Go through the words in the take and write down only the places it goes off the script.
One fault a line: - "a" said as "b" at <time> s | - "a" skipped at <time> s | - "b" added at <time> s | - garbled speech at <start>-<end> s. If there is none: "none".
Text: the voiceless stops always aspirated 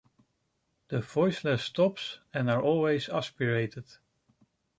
- "and are" added at 2.3 s